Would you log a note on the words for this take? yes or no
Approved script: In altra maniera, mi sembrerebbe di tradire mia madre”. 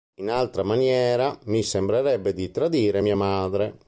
no